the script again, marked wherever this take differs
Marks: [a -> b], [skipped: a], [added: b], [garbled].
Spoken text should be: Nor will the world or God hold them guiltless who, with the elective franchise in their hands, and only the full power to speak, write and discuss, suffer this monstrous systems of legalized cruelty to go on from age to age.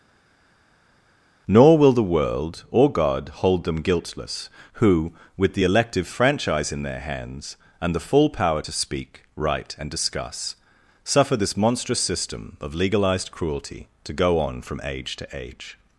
Nor will the world or God hold them guiltless who, with the elective franchise in their hands, and [skipped: only] the full power to speak, write and discuss, suffer this monstrous [systems -> system] of legalized cruelty to go on from age to age.